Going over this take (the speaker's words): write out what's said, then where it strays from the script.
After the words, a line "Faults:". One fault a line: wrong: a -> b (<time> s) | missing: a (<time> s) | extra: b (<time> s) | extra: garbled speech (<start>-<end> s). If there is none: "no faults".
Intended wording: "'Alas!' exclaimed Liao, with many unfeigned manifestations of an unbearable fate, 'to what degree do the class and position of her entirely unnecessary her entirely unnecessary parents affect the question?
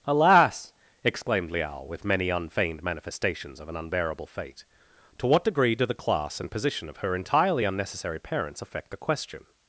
"'Alas!' exclaimed Liao, with many unfeigned manifestations of an unbearable fate, 'to what degree do the class and position of her entirely unnecessary parents affect the question?
Faults:
missing: her entirely unnecessary (8.2 s)